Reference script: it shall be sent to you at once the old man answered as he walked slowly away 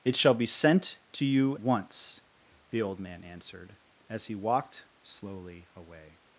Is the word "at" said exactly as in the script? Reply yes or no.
no